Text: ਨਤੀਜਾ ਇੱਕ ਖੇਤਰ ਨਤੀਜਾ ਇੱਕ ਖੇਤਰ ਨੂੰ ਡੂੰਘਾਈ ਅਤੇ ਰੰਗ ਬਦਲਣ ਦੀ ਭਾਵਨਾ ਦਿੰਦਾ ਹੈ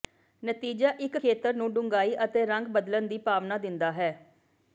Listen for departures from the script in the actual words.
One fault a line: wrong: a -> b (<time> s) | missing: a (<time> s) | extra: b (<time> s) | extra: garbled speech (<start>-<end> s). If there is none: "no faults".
missing: ਨਤੀਜਾ ਇੱਕ ਖੇਤਰ (1.5 s)